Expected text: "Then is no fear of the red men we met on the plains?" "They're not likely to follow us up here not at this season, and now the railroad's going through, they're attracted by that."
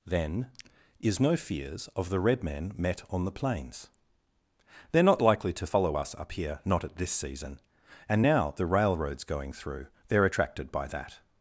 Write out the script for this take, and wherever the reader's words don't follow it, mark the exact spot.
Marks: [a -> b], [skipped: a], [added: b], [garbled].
"Then is no [fear -> fears] of the red men [skipped: we] met on the plains?" "They're not likely to follow us up here not at this season, and now the railroad's going through, they're attracted by that."